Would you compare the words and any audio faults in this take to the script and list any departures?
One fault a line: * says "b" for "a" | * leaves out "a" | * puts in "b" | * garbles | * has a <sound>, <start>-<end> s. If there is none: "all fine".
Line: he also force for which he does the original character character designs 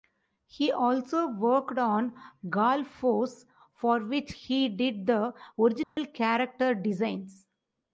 * puts in "worked on gall"
* says "did" for "does"
* has a dropout, 5.8-6.0 s
* leaves out "character"